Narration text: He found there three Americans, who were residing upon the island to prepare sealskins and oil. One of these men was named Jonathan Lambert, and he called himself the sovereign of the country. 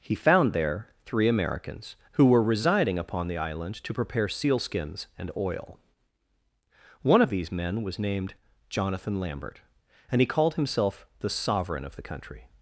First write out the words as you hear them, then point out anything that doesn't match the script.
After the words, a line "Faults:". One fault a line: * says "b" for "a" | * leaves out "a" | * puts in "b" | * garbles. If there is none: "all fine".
He found there three Americans, who were residing upon the island to prepare sealskins and oil. One of these men was named Jonathan Lambert, and he called himself the sovereign of the country.
Faults:
all fine